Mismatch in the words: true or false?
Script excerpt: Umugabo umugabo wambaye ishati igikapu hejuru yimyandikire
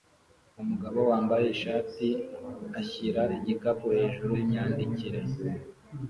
true